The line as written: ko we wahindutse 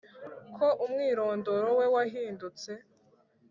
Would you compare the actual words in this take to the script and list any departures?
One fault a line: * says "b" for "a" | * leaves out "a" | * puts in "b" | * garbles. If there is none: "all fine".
* puts in "umwirondoro"